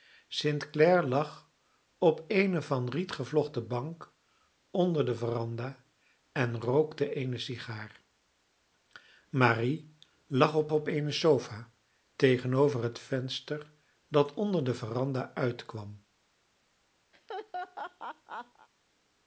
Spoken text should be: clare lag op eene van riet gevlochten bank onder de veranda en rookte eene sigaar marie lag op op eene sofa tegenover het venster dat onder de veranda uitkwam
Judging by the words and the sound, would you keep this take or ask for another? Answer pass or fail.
fail